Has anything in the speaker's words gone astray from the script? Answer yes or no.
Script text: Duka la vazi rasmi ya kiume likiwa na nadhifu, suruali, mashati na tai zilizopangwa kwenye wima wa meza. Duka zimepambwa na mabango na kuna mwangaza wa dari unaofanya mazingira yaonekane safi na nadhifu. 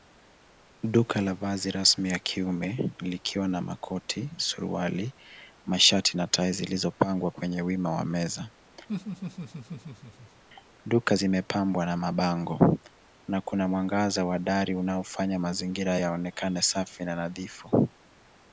yes